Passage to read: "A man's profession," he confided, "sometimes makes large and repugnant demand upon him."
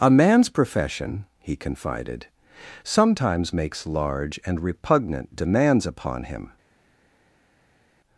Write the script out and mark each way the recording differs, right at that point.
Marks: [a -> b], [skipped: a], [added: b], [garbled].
"A man's profession," he confided, "sometimes makes large and repugnant [demand -> demands] upon him."